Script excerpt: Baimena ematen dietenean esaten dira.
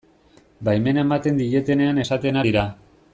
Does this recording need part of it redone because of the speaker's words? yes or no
no